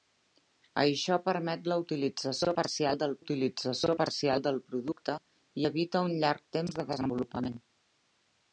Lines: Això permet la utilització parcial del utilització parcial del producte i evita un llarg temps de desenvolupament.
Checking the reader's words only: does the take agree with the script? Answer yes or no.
yes